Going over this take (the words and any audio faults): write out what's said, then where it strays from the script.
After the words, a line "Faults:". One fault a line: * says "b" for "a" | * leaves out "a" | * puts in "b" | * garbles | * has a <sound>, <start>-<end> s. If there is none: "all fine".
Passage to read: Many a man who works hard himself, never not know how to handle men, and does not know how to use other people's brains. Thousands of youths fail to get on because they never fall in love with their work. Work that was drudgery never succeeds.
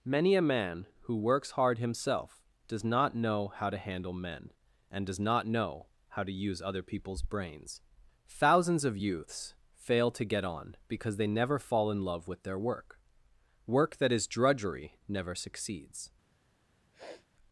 Many a man who works hard himself, does not know how to handle men, and does not know how to use other people's brains. Thousands of youths fail to get on because they never fall in love with their work. Work that is drudgery never succeeds.
Faults:
* says "does" for "never"
* says "is" for "was"
* has a sniff, 16.9-17.3 s